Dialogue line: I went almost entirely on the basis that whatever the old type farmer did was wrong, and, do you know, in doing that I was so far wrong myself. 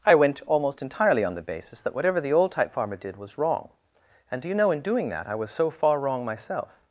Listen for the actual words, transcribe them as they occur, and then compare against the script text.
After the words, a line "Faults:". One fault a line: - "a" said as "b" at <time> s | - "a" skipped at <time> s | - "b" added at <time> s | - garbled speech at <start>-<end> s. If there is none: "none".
I went almost entirely on the basis that whatever the old type farmer did was wrong, and, do you know, in doing that I was so far wrong myself.
Faults:
none